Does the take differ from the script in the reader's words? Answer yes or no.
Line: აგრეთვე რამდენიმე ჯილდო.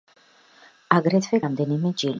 no